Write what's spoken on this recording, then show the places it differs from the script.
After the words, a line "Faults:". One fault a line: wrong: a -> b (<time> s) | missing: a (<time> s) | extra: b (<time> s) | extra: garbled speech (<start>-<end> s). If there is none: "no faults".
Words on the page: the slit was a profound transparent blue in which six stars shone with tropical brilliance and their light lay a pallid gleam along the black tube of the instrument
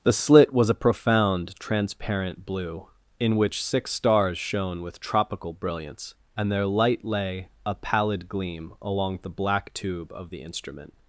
the slit was a profound transparent blue in which six stars shone with tropical brilliance and their light lay a pallid gleam along the black tube of the instrument
Faults:
no faults